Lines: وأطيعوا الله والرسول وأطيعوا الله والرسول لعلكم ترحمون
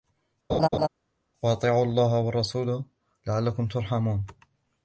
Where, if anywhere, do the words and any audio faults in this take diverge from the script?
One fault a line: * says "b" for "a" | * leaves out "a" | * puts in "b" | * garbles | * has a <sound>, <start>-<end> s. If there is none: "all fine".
* has a laugh, 0.5-0.9 s
* leaves out "وأطيعوا الله والرسول"